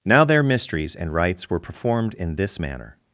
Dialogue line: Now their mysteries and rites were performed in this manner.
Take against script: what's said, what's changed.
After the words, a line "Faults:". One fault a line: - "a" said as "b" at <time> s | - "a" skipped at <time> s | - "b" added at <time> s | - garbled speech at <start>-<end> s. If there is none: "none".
Now their mysteries and rites were performed in this manner.
Faults:
none